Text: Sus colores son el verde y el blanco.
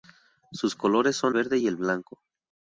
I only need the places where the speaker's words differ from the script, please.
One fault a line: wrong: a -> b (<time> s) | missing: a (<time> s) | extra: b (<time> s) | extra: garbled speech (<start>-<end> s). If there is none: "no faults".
missing: el (1.4 s)